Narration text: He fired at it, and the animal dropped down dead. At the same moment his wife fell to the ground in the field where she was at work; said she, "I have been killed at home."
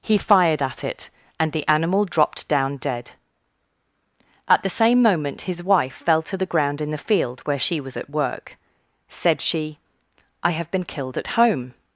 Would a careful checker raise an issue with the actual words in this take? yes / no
no